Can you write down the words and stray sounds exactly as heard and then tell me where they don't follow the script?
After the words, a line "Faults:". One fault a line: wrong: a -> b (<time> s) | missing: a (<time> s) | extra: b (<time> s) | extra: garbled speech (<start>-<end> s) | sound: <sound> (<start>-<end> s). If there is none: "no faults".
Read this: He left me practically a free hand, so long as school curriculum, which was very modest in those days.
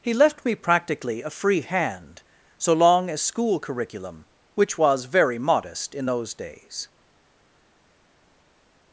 He left me practically a free hand, so long as school curriculum, which was very modest in those days.
Faults:
no faults